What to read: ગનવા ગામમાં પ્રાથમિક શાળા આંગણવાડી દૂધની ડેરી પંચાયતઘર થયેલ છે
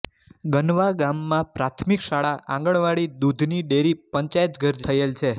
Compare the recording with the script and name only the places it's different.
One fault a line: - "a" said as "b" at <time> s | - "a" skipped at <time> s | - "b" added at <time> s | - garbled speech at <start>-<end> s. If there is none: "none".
none